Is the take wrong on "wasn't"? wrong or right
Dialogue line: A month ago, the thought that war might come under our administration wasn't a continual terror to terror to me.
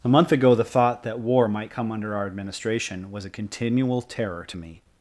wrong